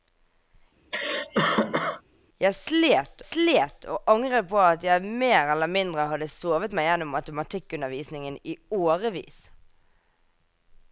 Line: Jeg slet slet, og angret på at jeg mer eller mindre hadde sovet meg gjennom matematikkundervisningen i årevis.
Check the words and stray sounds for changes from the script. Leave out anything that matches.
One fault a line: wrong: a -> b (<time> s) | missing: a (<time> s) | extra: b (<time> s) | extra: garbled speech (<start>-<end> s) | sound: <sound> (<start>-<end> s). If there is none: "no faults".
sound: cough (0.9-2.0 s)